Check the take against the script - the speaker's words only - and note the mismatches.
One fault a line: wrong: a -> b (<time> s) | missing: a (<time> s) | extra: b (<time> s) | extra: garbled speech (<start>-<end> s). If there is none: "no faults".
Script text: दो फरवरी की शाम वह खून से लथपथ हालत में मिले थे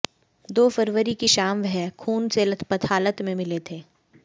no faults